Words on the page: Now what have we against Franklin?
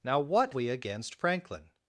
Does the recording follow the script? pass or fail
fail